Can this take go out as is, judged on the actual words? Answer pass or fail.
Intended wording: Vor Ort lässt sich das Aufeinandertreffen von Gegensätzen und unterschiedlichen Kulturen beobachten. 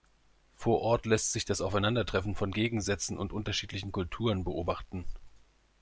pass